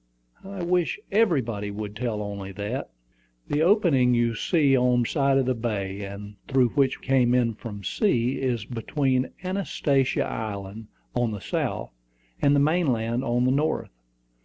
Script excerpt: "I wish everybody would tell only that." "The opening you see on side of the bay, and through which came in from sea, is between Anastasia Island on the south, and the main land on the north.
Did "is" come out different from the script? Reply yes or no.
no